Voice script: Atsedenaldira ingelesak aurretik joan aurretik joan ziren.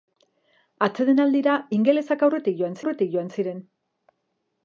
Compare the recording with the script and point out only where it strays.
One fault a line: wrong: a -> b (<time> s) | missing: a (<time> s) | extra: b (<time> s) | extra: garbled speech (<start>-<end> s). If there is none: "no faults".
no faults